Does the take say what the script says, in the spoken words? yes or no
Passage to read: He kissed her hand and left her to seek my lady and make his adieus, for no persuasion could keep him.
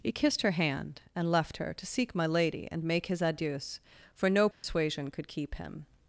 yes